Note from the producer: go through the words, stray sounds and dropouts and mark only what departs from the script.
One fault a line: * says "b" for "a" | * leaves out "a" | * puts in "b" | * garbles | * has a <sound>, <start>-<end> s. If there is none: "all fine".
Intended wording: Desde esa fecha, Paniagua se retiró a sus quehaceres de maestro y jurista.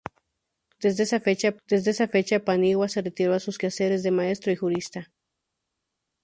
* puts in "desde esa fecha"